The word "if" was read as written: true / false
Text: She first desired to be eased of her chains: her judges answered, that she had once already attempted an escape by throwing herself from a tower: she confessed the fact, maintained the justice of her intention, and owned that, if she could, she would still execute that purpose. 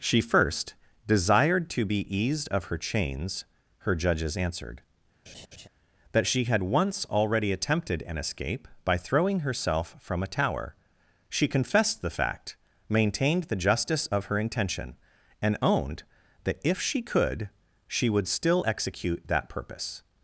true